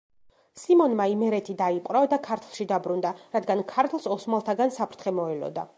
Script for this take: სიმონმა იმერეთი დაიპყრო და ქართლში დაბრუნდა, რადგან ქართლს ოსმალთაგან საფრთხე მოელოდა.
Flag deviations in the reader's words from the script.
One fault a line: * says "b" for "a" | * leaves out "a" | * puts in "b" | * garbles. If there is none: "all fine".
all fine